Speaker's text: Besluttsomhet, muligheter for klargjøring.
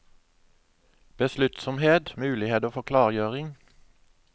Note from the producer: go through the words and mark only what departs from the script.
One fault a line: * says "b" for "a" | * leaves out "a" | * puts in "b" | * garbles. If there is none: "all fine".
all fine